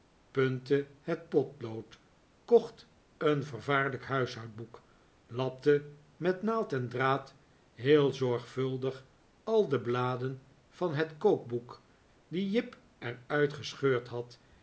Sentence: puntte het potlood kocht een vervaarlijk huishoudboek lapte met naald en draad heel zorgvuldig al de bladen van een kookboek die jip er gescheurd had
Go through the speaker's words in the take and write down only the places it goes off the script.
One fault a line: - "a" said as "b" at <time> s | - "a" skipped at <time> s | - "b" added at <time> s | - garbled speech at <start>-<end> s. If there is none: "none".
- "een" said as "het" at 10.9 s
- "uit" added at 13.3 s